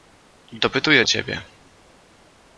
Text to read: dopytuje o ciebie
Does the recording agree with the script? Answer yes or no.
yes